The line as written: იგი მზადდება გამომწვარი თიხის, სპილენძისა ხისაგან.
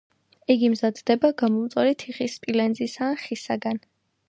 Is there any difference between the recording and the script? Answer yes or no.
yes